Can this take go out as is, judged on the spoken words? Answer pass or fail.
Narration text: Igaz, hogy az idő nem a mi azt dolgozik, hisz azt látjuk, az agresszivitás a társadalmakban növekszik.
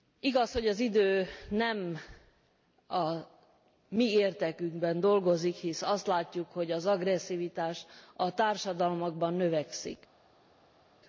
fail